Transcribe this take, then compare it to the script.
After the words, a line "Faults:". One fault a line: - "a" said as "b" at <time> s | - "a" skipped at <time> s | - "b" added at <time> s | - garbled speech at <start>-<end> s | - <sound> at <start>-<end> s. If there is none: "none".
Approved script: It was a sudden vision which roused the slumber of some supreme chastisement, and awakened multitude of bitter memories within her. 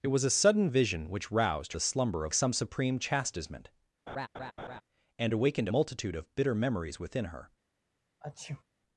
It was a sudden vision which roused the slumber of some supreme chastisement, and awakened multitude of bitter memories within her.
Faults:
- laugh at 4.1-4.8 s
- sneeze at 8.2-8.6 s